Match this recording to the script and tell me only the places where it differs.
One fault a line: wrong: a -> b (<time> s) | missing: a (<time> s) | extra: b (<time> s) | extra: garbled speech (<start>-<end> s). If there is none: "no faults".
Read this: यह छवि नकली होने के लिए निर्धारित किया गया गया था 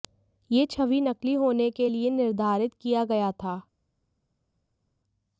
missing: गया (3.3 s)